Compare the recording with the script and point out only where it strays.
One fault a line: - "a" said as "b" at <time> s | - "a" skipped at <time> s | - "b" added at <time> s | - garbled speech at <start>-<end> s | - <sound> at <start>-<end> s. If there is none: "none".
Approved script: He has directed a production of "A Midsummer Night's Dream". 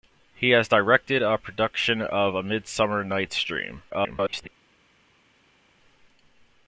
- garbled speech at 3.9-4.5 s